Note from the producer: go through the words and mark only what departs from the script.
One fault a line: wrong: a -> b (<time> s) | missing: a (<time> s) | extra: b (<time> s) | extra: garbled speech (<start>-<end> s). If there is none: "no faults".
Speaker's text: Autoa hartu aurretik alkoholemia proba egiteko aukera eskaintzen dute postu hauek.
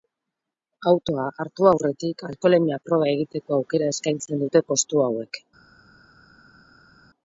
no faults